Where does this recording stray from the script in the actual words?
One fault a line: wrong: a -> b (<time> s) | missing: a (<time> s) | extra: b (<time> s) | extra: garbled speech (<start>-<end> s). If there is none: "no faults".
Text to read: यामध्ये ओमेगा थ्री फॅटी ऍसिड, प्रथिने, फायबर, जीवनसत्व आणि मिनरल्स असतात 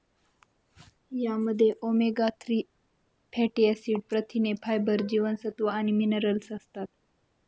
no faults